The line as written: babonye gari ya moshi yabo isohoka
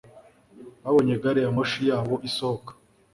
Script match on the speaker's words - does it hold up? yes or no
yes